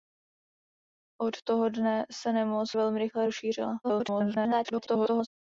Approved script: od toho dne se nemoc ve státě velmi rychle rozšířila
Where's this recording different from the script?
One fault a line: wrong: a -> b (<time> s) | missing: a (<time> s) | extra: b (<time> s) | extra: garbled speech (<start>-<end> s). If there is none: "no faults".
missing: ve státě (2.8 s)
extra: garbled speech (3.8-5.3 s)